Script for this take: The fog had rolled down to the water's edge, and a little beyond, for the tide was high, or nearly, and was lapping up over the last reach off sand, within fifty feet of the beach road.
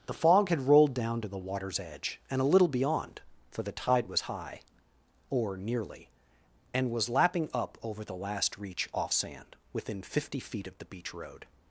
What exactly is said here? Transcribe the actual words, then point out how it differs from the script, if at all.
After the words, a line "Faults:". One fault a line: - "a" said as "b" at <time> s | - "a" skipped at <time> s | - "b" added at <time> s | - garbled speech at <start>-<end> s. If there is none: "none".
The fog had rolled down to the water's edge, and a little beyond, for the tide was high, or nearly, and was lapping up over the last reach off sand, within fifty feet of the beach road.
Faults:
none